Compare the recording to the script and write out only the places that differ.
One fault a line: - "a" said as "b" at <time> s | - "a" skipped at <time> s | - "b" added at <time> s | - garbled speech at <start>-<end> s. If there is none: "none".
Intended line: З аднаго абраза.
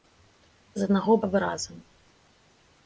none